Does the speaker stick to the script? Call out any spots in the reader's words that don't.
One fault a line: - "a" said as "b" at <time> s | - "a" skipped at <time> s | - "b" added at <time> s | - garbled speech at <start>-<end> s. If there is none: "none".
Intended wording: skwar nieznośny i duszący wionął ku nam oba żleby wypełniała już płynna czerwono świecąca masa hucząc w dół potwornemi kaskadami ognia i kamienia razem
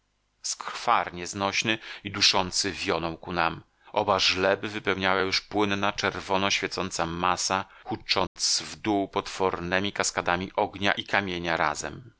none